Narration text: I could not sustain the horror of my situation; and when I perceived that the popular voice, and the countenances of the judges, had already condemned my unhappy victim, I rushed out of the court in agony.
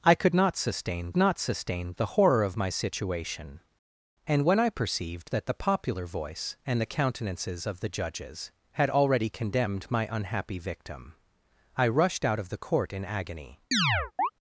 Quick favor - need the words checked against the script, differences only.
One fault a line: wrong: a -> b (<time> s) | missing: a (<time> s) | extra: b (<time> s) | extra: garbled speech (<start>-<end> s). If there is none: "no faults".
extra: not sustain (1.2 s)